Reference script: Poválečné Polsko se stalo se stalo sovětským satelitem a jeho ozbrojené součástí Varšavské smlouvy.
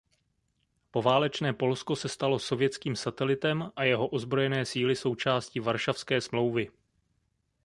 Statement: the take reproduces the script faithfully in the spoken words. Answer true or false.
false